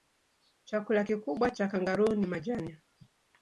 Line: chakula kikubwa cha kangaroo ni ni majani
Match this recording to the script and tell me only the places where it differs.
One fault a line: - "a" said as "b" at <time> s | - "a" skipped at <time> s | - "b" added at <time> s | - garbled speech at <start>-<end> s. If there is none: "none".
- "ni" skipped at 2.3 s